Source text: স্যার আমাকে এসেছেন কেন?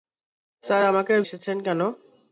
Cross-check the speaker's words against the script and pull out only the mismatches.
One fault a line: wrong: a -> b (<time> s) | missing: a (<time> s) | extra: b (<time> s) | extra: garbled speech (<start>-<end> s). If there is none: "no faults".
no faults